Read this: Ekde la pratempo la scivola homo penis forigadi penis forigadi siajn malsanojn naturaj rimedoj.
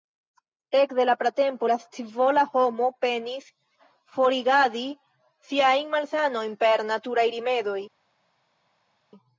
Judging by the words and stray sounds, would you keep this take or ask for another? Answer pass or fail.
fail